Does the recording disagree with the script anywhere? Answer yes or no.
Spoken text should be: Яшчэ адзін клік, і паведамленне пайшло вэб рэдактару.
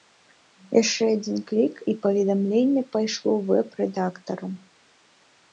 no